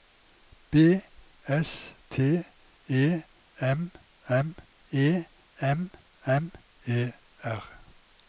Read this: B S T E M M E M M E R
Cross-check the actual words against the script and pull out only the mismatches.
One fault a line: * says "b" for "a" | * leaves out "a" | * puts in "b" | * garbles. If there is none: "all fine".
all fine